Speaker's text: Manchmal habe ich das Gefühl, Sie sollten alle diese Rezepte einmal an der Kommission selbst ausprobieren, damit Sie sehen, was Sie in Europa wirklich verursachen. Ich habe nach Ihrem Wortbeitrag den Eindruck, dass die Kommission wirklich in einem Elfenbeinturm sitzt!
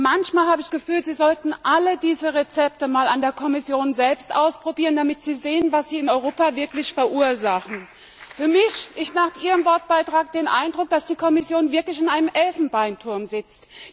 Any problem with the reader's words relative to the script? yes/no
yes